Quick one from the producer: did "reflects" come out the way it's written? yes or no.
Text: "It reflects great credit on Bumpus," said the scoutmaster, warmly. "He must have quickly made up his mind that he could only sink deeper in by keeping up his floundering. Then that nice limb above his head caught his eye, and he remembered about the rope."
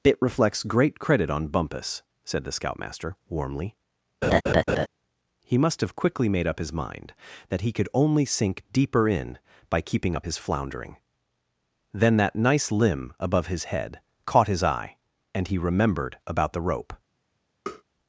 yes